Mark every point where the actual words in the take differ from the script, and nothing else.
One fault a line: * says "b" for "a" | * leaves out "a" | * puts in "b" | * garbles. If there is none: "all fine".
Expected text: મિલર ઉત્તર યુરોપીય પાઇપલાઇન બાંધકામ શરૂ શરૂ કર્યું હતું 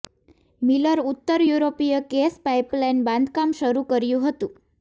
* puts in "ગેસ"
* leaves out "શરૂ"